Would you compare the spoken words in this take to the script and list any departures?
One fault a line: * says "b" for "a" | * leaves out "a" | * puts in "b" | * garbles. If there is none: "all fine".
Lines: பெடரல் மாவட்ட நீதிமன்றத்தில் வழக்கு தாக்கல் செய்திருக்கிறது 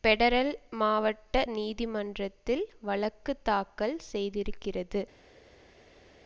all fine